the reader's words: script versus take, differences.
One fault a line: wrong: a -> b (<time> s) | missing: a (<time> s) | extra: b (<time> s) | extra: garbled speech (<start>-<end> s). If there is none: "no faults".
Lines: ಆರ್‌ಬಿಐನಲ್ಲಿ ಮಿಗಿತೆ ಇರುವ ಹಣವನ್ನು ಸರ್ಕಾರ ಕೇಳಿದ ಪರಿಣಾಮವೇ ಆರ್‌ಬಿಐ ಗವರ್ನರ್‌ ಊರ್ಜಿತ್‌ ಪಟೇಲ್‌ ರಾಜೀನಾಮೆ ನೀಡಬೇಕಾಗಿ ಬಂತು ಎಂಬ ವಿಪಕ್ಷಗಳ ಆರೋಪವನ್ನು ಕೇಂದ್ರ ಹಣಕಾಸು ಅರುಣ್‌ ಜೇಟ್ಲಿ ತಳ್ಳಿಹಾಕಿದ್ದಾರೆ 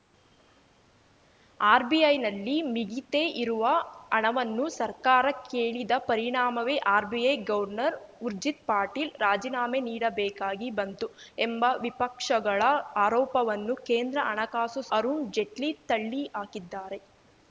no faults